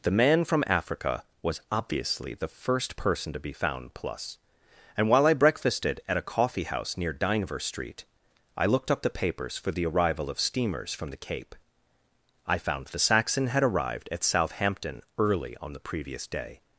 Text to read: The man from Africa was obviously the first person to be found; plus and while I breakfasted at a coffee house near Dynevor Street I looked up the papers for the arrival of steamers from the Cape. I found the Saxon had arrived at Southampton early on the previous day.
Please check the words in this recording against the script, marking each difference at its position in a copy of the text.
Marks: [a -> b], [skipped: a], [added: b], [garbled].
The man from Africa was obviously the first person to be found; plus and while I breakfasted at a coffee house near Dynevor Street I looked up the papers for the arrival of steamers from the Cape. I found the Saxon had arrived at Southampton early on the previous day.